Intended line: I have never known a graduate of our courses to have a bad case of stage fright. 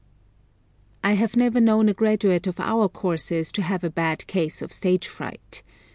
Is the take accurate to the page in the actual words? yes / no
yes